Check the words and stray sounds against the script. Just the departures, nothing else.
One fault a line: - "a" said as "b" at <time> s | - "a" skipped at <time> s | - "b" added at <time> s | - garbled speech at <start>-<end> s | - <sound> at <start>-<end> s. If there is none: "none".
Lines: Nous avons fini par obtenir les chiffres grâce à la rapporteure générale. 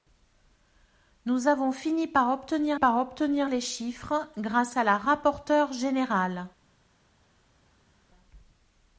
- "par obtenir" added at 2.7 s